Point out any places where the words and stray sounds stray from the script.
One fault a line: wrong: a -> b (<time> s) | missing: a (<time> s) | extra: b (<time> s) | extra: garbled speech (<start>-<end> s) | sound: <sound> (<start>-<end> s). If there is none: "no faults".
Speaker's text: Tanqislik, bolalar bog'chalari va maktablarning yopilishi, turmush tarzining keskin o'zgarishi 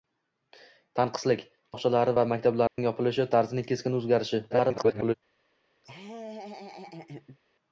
missing: bolalar (1.4 s)
sound: dropout (2.7-2.8 s)
missing: turmush (3.3 s)
extra: garbled speech (4.5-5.1 s)
sound: laugh (5.8-7.4 s)